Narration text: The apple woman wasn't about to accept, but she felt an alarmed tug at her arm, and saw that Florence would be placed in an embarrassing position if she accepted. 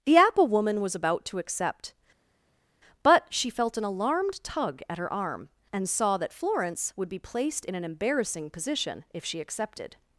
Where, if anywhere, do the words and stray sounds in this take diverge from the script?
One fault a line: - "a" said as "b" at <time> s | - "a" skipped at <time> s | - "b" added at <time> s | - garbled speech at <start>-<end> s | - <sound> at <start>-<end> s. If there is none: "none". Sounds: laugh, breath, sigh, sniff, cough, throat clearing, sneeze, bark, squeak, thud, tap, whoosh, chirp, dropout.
- "wasn't" said as "was" at 0.8 s